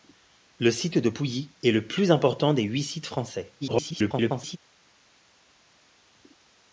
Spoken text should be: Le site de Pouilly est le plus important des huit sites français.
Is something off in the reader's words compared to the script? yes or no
yes